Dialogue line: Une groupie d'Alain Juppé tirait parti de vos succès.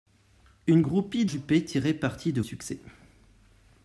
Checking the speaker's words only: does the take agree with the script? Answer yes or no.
no